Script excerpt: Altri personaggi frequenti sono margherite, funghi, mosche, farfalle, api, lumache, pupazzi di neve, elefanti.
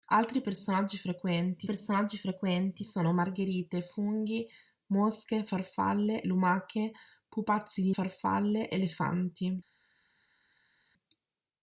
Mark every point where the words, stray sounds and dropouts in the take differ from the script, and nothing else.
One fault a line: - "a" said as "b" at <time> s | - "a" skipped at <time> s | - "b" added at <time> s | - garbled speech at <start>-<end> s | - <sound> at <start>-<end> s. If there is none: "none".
- "personaggi frequenti" added at 1.6 s
- "api" skipped at 6.2 s
- "neve" said as "farfalle" at 7.9 s